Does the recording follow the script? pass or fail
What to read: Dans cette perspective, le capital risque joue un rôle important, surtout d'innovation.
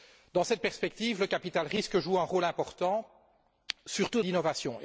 pass